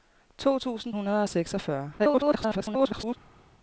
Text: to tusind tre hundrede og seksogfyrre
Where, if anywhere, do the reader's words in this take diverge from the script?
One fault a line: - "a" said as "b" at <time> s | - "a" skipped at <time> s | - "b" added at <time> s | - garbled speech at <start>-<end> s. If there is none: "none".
- "tre" skipped at 0.9 s
- garbled speech at 2.0-3.2 s